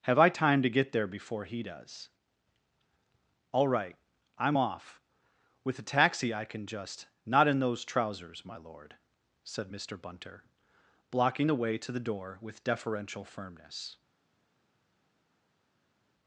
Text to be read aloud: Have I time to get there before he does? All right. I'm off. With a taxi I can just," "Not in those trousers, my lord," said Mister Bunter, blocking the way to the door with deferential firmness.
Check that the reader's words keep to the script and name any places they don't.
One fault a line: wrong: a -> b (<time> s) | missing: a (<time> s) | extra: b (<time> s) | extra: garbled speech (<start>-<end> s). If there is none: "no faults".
no faults